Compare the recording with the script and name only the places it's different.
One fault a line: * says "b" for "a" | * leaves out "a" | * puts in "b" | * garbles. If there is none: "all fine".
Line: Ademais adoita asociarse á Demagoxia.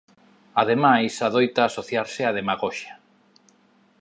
all fine